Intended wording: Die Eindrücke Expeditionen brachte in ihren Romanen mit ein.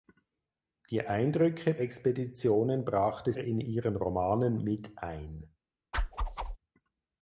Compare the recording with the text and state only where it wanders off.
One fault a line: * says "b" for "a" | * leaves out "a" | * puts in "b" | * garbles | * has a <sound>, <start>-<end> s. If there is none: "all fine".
* has a whoosh, 5.9-6.6 s